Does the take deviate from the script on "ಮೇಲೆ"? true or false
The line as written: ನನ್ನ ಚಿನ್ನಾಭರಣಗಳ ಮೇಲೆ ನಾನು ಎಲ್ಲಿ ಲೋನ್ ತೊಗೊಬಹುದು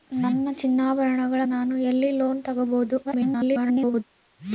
true